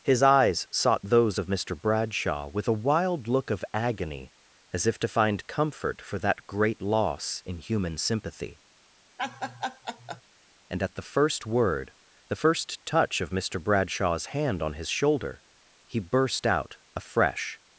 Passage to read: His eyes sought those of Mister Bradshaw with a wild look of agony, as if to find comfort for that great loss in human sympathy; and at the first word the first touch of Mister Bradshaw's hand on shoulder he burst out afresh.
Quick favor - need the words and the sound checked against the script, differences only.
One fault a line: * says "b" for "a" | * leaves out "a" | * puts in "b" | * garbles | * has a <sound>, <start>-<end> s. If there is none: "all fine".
* has a laugh, 9.2-10.2 s
* puts in "his"